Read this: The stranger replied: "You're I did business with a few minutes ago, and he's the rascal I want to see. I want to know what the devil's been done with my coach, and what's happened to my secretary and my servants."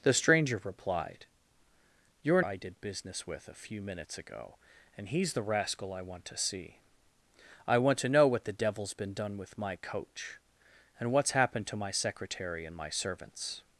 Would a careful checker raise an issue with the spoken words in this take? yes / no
no